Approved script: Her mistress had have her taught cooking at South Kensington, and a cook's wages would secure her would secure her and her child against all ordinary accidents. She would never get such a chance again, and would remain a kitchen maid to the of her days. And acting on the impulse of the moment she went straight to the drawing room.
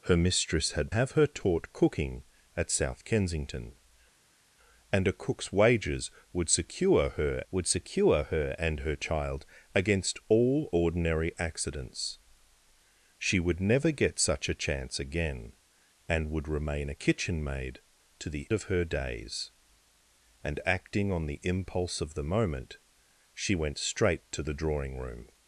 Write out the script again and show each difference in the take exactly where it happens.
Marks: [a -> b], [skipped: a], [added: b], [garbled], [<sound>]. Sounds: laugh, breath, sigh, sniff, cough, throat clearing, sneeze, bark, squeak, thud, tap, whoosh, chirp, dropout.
Her mistress had have her taught cooking at South Kensington, and a cook's wages would secure her would secure her and her child against all ordinary accidents. She would never get such a chance again, and would remain a kitchen maid to the of her days. And acting on the impulse of the moment she went straight to the drawing room.